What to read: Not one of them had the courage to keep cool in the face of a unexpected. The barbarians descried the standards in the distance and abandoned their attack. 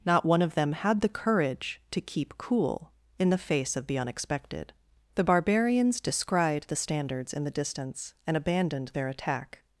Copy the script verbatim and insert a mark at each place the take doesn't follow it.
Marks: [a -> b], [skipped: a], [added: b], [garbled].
Not one of them had the courage to keep cool in the face of [a -> the] unexpected. The barbarians descried the standards in the distance and abandoned their attack.